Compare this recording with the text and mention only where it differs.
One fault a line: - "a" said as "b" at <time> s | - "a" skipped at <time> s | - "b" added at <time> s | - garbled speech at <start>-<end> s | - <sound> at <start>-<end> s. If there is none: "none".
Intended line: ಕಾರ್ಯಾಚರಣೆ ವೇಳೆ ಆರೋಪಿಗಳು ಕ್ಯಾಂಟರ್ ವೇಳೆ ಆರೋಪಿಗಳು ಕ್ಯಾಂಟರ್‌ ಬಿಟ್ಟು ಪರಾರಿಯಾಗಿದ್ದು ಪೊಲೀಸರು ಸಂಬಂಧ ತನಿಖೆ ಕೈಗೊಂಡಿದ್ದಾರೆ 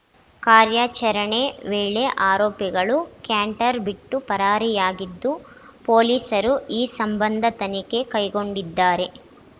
- "ವೇಳೆ ಆರೋಪಿಗಳು ಕ್ಯಾಂಟರ್" skipped at 3.8 s
- "ಈ" added at 6.7 s